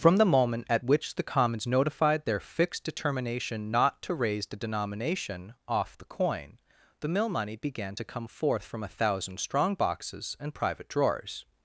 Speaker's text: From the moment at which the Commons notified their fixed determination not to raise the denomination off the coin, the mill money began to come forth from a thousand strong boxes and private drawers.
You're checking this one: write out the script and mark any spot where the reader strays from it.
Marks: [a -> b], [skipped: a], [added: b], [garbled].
From the moment at which the Commons notified their fixed determination not to raise the denomination off the coin, the mill money began to come forth from a thousand strong boxes and private drawers.